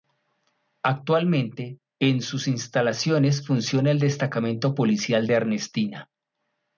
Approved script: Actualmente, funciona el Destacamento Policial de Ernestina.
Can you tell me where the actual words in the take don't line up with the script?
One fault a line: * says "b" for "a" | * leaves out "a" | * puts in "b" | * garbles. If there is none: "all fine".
* puts in "en sus instalaciones"